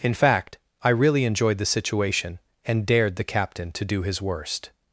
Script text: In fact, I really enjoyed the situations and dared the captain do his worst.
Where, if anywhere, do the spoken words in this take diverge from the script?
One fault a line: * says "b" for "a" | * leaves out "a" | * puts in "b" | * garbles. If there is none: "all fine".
* says "situation" for "situations"
* puts in "to"